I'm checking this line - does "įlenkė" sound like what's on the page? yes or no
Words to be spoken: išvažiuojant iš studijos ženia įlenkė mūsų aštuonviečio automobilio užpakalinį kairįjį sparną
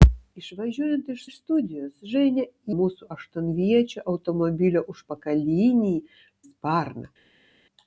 no